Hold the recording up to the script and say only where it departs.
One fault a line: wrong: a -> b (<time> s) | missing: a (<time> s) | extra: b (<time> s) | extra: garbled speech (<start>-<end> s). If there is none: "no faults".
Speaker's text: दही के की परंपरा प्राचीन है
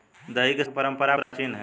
no faults